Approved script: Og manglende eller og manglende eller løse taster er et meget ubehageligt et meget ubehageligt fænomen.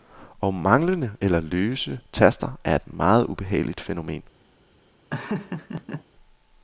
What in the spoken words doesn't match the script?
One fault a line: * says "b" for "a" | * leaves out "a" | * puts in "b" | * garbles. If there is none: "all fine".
* leaves out "og manglende eller"
* leaves out "et meget ubehageligt"